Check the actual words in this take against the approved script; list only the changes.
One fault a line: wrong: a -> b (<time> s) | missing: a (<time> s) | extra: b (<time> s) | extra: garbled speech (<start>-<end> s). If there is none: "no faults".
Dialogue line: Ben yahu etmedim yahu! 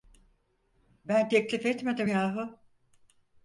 wrong: yahu -> teklif (1.3 s)